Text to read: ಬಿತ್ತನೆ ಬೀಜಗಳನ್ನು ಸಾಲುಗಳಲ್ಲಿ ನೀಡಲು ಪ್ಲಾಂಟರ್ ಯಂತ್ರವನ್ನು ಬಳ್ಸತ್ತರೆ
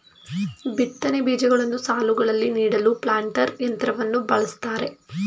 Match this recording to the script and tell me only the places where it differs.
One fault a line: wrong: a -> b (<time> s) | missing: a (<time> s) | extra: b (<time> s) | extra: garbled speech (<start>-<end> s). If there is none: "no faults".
no faults